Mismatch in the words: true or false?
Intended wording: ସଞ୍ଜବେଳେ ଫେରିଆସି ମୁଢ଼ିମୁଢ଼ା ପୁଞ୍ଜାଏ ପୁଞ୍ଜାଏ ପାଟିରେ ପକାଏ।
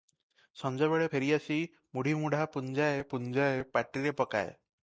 false